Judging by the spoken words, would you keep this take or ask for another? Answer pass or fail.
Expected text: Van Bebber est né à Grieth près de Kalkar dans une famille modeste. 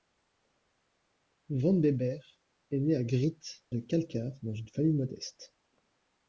fail